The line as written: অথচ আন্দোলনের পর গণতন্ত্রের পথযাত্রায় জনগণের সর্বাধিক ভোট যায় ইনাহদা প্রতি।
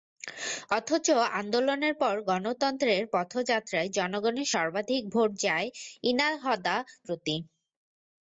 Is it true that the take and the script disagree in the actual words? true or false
false